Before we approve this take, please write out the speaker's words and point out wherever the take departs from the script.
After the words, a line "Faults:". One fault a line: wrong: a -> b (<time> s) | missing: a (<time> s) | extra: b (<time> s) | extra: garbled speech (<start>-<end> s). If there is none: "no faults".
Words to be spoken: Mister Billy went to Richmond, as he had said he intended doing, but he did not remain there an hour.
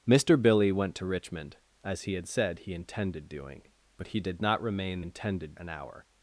Mister Billy went to Richmond, as he had said he intended doing, but he did not remain intended an hour.
Faults:
wrong: there -> intended (5.0 s)